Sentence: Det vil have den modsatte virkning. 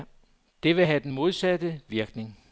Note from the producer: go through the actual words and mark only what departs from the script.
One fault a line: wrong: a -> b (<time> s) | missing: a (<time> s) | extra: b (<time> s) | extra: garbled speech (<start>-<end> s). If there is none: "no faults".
no faults